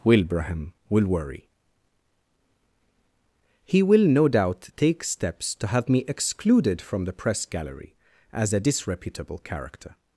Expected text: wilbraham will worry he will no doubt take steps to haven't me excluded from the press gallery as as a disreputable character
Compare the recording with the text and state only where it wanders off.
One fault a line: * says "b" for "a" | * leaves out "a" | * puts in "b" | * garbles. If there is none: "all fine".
* says "have" for "haven't"
* leaves out "as"